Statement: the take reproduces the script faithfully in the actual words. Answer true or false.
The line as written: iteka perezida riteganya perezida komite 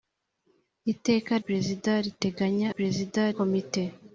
true